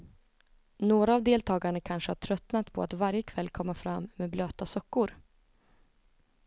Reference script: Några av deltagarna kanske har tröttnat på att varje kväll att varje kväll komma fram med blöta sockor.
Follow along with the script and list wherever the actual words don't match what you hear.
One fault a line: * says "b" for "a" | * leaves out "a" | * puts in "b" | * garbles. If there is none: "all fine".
* leaves out "att varje kväll"